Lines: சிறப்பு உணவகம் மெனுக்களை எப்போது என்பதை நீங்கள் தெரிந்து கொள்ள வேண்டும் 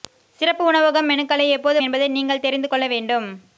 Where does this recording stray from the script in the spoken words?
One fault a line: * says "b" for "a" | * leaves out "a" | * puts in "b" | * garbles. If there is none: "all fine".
all fine